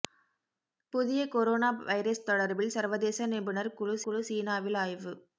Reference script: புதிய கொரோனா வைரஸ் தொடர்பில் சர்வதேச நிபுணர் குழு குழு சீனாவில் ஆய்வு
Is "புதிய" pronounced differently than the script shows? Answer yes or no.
no